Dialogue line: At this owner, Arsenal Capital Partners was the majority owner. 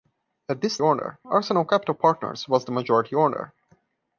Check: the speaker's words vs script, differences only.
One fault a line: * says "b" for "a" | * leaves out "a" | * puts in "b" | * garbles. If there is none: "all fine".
all fine